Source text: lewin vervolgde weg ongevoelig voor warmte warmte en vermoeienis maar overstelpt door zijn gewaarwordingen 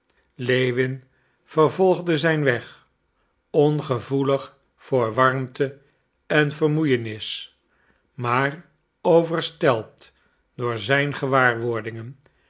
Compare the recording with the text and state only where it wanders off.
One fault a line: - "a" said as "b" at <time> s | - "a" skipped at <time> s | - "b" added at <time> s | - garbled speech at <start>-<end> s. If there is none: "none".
- "zijn" added at 2.2 s
- "warmte" skipped at 5.8 s